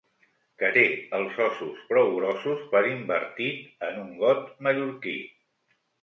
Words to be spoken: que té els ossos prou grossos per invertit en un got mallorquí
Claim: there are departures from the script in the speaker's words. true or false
false